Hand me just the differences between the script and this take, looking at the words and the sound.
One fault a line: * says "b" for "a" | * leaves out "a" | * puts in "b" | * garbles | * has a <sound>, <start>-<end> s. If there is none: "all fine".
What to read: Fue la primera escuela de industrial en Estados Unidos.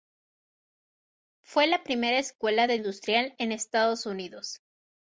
all fine